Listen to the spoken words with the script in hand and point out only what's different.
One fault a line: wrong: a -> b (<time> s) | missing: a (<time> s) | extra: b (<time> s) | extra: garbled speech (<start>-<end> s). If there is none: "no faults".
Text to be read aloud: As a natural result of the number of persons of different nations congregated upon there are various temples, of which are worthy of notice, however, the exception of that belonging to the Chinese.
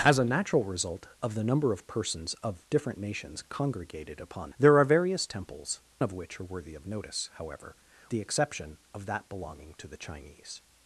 no faults